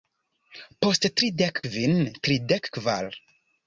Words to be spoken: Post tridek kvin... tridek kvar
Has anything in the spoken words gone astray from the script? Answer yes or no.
no